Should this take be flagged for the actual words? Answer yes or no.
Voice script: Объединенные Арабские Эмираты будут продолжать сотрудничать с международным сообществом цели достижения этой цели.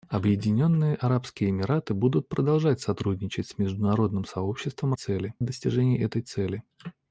no